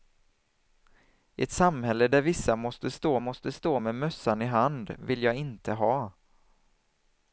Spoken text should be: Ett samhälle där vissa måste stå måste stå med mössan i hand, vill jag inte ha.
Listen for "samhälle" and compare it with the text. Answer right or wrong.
right